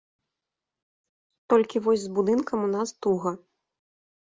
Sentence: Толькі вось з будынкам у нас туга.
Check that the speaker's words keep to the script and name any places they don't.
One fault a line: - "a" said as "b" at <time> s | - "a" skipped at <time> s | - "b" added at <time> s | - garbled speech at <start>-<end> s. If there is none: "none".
none